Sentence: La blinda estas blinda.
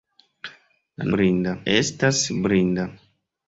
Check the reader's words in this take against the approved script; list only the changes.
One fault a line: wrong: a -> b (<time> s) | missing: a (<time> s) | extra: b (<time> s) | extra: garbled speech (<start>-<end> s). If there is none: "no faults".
no faults